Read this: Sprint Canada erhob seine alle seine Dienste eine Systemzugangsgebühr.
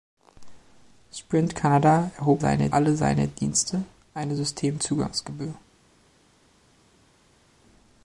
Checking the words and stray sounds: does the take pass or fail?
pass